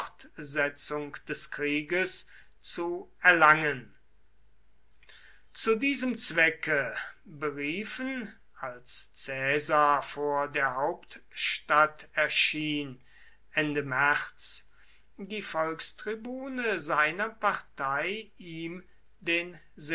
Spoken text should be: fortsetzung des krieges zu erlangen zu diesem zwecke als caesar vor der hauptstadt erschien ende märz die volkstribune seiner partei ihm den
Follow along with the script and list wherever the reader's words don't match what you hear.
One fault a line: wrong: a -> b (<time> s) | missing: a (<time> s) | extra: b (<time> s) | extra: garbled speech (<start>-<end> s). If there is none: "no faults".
extra: beriefen (7.2 s)